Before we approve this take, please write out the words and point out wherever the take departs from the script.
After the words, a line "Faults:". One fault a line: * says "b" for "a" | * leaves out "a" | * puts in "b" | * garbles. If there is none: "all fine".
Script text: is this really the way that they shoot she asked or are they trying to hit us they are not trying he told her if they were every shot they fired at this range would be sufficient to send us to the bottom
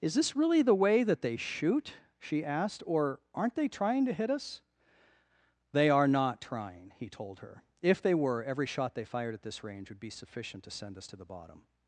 is this really the way that they shoot she asked or aren't they trying to hit us they are not trying he told her if they were every shot they fired at this range would be sufficient to send us to the bottom
Faults:
* says "aren't" for "are"